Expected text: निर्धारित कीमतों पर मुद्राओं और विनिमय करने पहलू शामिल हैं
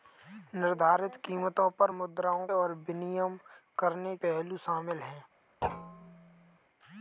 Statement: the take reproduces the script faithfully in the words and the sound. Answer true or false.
false